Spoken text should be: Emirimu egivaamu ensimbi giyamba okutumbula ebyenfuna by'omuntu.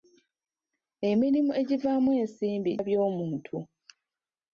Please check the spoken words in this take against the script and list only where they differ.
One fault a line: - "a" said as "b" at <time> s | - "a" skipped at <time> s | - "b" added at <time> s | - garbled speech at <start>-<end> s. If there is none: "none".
- "giyamba okutumbula ebyenfuna" skipped at 2.7 s